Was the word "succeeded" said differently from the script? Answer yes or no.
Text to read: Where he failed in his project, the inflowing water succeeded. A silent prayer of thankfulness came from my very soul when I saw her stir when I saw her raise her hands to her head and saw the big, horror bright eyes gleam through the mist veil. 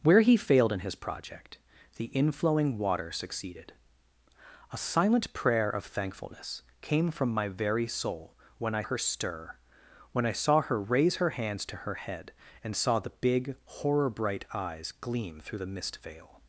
no